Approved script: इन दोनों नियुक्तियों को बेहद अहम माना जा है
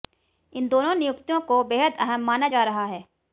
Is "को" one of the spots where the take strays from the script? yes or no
no